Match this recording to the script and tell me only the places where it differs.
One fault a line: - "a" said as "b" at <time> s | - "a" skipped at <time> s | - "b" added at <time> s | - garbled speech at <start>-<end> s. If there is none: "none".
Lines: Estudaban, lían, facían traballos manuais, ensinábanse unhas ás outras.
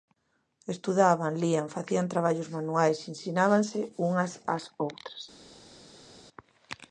none